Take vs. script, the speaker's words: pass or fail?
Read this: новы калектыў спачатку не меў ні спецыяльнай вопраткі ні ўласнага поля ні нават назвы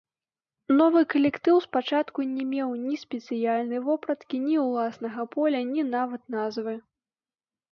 pass